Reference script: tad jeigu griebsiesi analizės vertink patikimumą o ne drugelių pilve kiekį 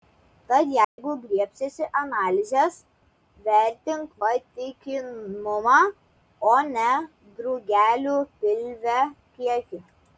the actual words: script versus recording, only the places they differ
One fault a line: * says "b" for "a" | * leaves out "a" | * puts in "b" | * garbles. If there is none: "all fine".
all fine